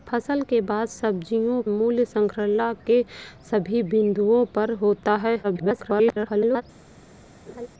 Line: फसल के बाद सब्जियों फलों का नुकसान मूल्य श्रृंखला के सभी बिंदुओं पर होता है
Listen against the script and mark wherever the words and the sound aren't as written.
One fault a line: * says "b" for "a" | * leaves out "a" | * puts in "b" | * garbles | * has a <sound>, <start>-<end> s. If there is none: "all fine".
* leaves out "फलों का नुकसान"
* garbles
* has a laugh, 7.5-7.7 s